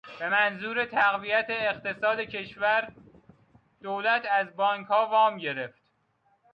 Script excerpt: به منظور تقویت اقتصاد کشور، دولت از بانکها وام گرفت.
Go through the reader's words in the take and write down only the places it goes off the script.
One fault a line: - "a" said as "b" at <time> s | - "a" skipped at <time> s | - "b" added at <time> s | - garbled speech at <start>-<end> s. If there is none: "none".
none